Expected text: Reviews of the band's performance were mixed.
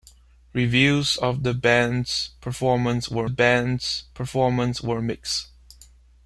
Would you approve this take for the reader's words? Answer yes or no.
no